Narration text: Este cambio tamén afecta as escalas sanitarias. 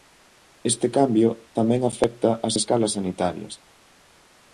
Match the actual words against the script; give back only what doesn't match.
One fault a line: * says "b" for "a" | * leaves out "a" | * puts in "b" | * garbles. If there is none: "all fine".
all fine